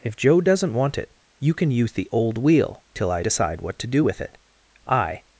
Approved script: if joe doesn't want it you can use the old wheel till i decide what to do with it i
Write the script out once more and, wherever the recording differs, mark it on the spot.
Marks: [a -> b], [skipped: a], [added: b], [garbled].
if joe doesn't want it you can use the old wheel till i decide what to do with it i